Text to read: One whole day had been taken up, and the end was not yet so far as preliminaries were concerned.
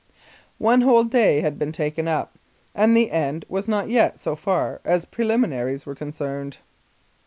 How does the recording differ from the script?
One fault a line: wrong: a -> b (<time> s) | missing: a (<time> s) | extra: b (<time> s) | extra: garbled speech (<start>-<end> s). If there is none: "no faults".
no faults